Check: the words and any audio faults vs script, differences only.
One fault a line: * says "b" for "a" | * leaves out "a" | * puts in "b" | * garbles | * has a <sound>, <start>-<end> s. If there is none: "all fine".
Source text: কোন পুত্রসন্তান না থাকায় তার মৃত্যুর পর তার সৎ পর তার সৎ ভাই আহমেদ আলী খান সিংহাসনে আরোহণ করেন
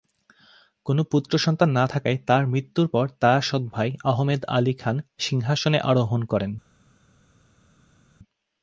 * leaves out "পর তার সৎ"